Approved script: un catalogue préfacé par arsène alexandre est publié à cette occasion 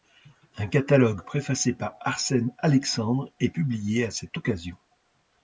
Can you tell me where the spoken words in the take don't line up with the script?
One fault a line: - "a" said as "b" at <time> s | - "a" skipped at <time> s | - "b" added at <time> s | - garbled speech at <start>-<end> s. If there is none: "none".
none